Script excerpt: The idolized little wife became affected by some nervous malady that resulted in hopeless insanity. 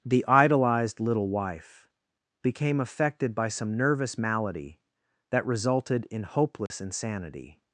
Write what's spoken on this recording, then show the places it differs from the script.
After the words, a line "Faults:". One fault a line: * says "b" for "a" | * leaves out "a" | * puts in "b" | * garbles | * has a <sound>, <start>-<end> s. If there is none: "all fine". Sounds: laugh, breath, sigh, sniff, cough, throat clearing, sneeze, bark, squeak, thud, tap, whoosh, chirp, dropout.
The idolized little wife became affected by some nervous malady that resulted in hopeless insanity.
Faults:
* has a dropout, 6.7-6.7 s